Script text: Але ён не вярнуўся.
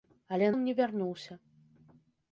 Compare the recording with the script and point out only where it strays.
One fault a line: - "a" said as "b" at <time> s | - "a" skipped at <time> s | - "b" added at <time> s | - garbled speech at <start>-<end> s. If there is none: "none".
none